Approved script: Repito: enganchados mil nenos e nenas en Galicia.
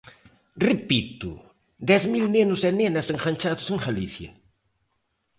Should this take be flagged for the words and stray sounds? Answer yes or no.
yes